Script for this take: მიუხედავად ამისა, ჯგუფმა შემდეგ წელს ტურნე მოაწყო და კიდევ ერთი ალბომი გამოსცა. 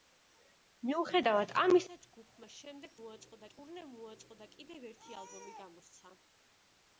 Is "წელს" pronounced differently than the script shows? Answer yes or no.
yes